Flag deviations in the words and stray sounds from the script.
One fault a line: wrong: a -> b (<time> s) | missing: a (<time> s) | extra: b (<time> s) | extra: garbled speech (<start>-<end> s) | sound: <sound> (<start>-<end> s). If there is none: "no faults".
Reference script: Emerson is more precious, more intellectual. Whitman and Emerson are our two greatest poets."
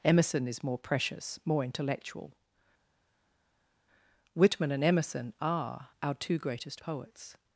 no faults